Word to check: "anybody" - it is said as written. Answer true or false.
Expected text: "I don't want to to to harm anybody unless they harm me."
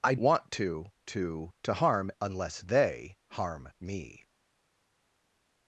false